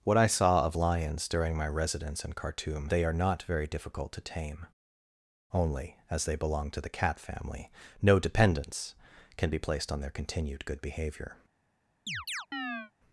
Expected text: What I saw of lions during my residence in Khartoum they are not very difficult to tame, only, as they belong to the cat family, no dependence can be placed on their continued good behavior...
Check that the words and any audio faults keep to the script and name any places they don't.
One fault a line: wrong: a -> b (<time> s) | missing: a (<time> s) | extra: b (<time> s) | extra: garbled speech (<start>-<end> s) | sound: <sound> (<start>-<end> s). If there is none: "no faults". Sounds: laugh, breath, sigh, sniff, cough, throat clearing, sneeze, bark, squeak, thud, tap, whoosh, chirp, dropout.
sound: chirp (12.1-12.9 s)